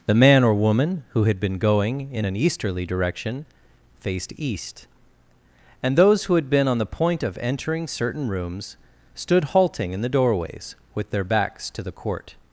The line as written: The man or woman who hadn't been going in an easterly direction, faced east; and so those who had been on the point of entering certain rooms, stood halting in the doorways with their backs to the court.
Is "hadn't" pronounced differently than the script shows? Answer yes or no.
yes